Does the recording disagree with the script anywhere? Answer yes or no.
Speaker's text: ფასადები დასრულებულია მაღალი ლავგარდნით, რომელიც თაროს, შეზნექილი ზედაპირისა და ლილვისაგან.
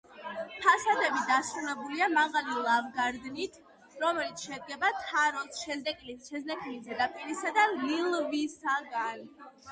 yes